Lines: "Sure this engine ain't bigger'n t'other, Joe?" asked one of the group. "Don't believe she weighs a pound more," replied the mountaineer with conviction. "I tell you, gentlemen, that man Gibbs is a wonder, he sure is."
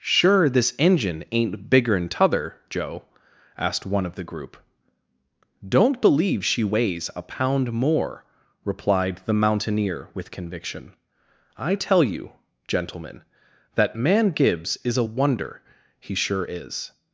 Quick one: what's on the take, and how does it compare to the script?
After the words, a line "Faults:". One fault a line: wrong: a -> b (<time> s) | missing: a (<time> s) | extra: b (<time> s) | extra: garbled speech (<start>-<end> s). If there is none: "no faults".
"Sure this engine ain't bigger'n t'other, Joe?" asked one of the group. "Don't believe she weighs a pound more," replied the mountaineer with conviction. "I tell you, gentlemen, that man Gibbs is a wonder, he sure is."
Faults:
no faults